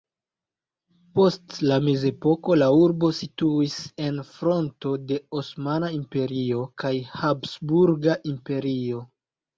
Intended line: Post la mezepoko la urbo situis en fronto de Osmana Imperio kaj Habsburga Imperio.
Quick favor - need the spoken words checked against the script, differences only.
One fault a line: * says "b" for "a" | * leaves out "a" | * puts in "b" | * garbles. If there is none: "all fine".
all fine